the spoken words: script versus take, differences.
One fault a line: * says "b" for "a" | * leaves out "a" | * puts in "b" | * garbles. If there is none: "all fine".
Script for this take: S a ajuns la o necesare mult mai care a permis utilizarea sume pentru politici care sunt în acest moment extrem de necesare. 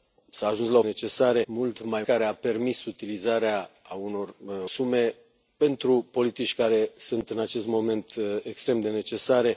all fine